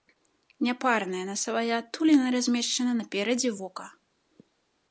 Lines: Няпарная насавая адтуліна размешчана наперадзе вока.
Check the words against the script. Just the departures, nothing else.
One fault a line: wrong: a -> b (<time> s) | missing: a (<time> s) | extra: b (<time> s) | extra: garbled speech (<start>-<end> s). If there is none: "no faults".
no faults